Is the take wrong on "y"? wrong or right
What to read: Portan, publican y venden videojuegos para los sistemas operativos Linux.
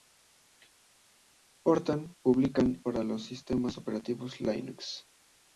wrong